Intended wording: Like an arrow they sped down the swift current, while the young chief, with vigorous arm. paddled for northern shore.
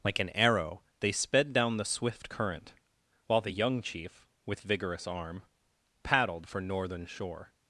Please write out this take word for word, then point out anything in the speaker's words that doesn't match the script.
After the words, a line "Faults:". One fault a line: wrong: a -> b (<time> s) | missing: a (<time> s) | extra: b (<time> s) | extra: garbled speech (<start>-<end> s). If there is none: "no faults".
Like an arrow they sped down the swift current, while the young chief, with vigorous arm. paddled for northern shore.
Faults:
no faults